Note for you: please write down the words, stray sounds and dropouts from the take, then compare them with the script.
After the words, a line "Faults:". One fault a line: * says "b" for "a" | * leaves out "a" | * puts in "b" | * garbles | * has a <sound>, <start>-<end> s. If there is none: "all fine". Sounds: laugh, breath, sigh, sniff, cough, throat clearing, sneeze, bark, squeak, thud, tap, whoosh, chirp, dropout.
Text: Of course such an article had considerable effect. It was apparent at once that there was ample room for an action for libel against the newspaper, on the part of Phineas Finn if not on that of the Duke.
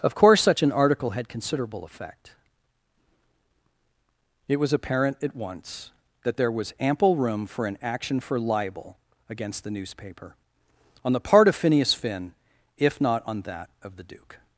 Of course such an article had considerable effect. It was apparent at once that there was ample room for an action for libel against the newspaper, on the part of Phineas Finn if not on that of the Duke.
Faults:
all fine